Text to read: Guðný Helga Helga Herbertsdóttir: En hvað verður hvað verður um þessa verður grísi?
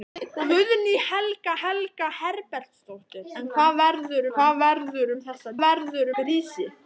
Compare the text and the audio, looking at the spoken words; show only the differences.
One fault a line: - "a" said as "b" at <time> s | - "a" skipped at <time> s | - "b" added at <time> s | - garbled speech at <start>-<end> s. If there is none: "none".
none